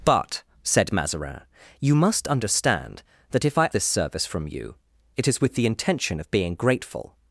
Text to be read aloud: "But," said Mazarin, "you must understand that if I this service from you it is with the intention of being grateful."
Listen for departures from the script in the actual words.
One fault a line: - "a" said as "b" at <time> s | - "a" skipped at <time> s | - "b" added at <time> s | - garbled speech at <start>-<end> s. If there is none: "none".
none